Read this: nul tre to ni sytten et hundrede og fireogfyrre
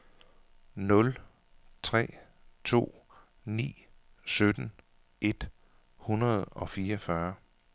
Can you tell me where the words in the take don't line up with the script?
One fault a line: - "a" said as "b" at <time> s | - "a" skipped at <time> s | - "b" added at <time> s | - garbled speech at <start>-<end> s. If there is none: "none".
none